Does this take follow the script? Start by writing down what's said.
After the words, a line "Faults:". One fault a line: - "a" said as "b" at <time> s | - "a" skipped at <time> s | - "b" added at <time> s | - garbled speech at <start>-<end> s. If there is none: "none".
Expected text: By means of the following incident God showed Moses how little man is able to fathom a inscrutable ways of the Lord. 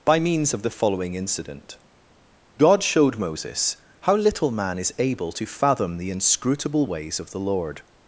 By means of the following incident God showed Moses how little man is able to fathom the inscrutable ways of the Lord.
Faults:
- "a" said as "the" at 6.0 s